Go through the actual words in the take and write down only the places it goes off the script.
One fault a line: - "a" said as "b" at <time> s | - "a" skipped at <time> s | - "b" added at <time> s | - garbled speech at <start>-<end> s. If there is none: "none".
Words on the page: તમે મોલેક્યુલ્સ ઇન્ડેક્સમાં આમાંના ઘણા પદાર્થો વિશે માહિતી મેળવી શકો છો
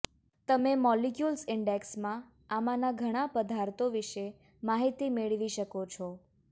none